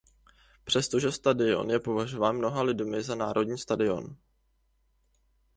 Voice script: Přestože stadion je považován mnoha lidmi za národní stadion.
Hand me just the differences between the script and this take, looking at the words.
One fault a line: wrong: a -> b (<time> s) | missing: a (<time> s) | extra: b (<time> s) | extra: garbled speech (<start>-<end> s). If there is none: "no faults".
no faults